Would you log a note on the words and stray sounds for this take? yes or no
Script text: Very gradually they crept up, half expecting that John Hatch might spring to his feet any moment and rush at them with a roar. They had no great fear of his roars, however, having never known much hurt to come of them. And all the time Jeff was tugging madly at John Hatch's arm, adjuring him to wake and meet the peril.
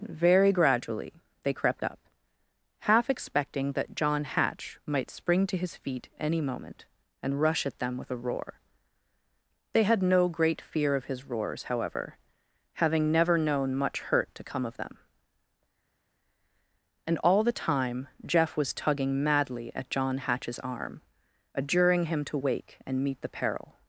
no